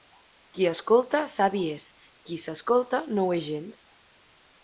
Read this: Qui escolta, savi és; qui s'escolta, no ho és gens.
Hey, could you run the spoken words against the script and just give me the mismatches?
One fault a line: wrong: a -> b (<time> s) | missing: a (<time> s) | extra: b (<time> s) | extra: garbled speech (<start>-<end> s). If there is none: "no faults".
no faults